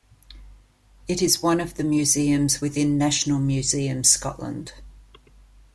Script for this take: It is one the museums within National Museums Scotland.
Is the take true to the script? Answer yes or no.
no